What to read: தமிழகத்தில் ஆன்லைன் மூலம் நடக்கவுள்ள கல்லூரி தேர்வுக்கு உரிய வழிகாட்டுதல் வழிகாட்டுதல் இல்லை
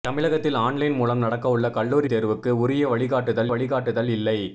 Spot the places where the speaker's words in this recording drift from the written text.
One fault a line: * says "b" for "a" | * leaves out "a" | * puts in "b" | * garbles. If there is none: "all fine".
all fine